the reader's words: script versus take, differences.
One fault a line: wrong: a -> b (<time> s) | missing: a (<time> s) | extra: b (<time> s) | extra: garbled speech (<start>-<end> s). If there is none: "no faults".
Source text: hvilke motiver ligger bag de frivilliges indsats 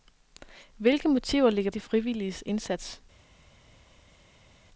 missing: bag (1.7 s)